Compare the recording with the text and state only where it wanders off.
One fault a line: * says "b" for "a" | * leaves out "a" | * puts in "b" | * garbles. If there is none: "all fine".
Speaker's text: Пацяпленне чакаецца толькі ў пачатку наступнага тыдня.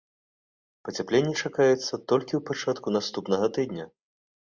all fine